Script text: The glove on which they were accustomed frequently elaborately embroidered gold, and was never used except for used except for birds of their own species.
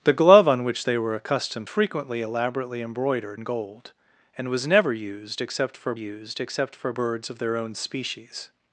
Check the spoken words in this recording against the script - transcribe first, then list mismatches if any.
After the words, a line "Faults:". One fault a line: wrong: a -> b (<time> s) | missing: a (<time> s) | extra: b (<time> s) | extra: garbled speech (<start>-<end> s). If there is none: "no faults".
The glove on which they were accustomed frequently elaborately embroidered gold, and was never used except for used except for birds of their own species.
Faults:
no faults